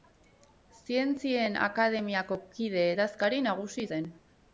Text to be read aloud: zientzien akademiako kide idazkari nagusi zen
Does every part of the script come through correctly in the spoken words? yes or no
yes